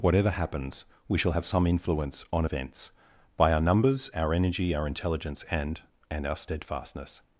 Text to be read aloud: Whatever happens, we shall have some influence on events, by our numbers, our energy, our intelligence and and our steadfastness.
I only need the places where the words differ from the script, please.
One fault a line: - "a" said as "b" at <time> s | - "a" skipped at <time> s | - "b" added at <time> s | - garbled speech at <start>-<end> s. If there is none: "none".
none